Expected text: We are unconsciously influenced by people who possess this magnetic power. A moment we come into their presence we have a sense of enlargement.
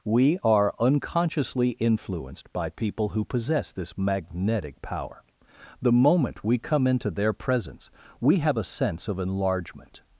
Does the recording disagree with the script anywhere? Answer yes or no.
yes